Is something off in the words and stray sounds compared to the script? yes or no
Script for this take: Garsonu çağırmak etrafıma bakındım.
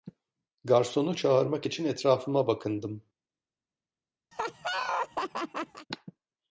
yes